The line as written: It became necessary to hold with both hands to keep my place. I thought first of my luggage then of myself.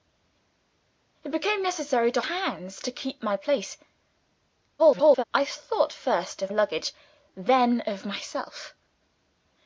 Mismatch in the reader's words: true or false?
true